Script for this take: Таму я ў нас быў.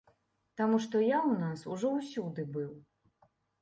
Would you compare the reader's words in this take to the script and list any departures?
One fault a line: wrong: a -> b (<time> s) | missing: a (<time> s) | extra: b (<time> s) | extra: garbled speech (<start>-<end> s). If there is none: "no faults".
extra: што (0.8 s)
extra: ужо ўсюды (1.8 s)